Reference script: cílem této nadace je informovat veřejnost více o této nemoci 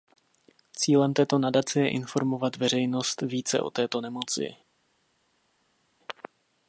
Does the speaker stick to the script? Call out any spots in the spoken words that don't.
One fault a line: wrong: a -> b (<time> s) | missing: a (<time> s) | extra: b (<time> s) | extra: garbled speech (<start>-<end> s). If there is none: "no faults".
no faults